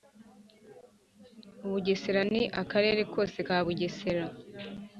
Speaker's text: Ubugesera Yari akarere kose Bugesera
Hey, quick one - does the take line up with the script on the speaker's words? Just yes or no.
no